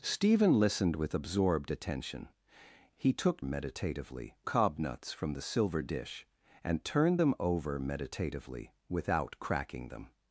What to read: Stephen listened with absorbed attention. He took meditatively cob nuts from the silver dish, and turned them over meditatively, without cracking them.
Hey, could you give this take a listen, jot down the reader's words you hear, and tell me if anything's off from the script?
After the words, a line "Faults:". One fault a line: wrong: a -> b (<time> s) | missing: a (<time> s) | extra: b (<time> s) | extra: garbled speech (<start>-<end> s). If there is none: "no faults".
Stephen listened with absorbed attention. He took meditatively cob nuts from the silver dish, and turned them over meditatively, without cracking them.
Faults:
no faults